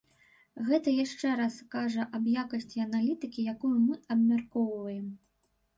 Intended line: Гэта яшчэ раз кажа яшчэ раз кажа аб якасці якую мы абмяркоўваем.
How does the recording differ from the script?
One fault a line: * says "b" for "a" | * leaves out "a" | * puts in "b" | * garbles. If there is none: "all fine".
* leaves out "яшчэ раз кажа"
* puts in "аналітыкі"